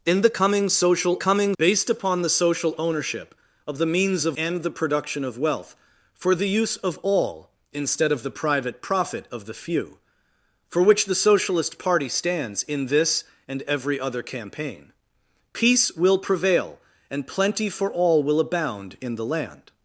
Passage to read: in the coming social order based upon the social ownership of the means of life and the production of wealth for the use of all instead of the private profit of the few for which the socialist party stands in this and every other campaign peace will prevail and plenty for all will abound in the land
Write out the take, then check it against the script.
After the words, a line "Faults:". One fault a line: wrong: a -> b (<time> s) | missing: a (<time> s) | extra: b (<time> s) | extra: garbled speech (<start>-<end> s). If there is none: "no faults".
in the coming social coming based upon the social ownership of the means of and the production of wealth for the use of all instead of the private profit of the few for which the socialist party stands in this and every other campaign peace will prevail and plenty for all will abound in the land
Faults:
wrong: order -> coming (1.2 s)
missing: life (4.4 s)